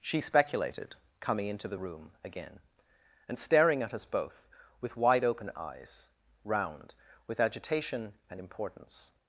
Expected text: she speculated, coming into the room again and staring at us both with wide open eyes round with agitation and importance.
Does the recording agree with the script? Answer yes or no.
yes